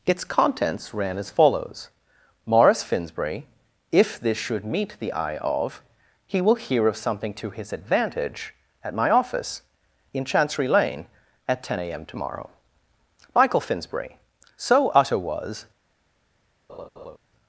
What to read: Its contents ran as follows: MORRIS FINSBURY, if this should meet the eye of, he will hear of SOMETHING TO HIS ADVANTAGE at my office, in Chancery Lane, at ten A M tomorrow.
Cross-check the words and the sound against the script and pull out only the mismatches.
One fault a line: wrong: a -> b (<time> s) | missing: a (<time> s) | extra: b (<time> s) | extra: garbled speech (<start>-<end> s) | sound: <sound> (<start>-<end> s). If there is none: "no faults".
extra: MICHAEL FINSBURY So utter was (13.3 s)
sound: laugh (16.7-17.2 s)